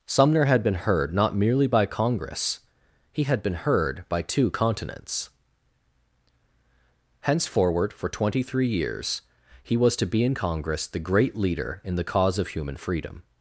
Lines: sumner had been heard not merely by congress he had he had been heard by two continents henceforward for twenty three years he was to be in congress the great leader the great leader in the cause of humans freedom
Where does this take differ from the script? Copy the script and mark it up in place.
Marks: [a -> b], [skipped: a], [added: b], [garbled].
sumner had been heard not merely by congress he had [skipped: he had] been heard by two continents henceforward for twenty three years he was to be in congress the great leader [skipped: the great leader] in the cause of [humans -> human] freedom